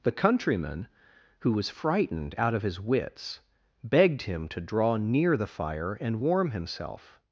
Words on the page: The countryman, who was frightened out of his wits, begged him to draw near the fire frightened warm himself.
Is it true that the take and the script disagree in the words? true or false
true